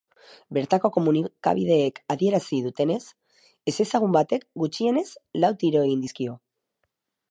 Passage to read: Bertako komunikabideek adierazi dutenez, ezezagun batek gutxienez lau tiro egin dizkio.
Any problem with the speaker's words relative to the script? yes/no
no